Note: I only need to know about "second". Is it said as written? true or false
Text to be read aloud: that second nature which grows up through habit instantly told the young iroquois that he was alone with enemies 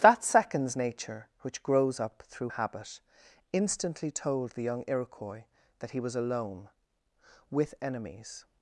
false